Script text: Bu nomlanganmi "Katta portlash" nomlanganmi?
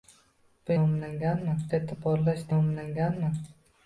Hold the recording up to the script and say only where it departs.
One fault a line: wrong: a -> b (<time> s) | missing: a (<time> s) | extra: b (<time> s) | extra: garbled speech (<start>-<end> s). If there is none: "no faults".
no faults